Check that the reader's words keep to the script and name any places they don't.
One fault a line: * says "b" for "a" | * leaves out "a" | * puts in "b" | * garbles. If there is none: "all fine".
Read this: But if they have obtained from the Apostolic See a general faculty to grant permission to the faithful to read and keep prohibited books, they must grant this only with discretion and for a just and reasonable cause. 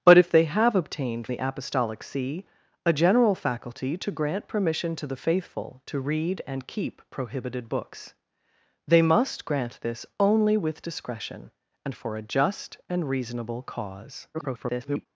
* leaves out "from"
* garbles